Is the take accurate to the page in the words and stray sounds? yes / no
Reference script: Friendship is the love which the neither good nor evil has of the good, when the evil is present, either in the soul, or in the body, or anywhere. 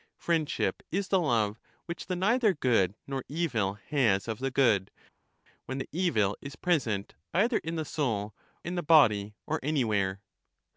no